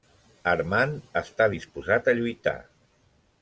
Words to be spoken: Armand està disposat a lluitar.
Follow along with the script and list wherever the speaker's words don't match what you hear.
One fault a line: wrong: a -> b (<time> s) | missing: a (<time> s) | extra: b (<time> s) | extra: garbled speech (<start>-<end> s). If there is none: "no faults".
no faults